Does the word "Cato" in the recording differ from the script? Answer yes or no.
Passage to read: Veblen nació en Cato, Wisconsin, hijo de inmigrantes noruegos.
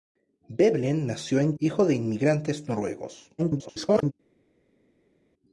yes